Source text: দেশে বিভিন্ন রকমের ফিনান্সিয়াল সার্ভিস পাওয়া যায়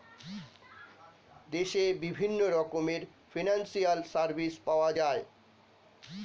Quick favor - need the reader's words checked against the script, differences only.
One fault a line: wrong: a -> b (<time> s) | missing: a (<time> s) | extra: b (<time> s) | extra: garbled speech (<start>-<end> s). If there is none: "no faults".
no faults